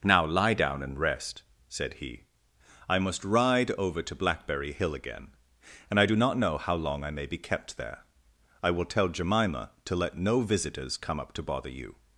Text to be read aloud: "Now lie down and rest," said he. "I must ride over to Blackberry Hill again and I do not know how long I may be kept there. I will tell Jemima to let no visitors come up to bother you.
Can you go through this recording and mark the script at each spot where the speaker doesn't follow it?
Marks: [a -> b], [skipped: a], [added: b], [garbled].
"Now lie down and rest," said he. "I must ride over to Blackberry Hill again and I do not know how long I may be kept there. I will tell Jemima to let no visitors come up to bother you.